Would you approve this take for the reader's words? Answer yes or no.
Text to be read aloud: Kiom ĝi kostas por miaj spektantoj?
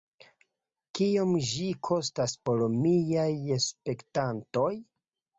yes